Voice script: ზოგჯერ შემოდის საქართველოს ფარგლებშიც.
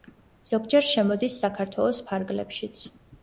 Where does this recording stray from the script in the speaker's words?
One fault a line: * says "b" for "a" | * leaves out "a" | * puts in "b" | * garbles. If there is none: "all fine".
all fine